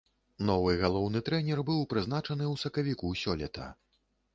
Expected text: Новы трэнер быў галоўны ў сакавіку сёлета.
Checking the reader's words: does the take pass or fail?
fail